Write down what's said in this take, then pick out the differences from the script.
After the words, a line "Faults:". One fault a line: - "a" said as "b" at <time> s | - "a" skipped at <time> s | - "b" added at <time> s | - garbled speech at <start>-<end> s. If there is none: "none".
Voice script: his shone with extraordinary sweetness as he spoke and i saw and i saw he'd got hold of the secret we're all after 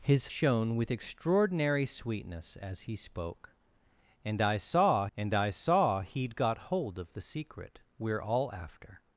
his shone with extraordinary sweetness as he spoke and i saw and i saw he'd got hold of the secret we're all after
Faults:
none